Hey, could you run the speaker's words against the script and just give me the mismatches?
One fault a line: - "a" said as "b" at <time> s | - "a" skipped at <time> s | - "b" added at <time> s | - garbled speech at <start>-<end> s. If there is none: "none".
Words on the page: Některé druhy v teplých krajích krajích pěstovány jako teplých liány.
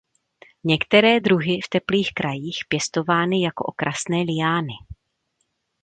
- "krajích" skipped at 2.6 s
- "teplých" said as "okrasné" at 3.6 s